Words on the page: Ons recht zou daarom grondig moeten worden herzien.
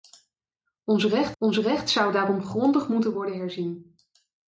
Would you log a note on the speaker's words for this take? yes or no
yes